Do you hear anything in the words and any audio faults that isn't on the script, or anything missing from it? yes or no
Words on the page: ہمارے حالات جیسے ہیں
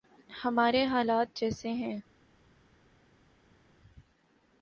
no